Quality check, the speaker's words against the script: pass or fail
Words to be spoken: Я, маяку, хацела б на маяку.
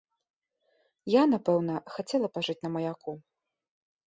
fail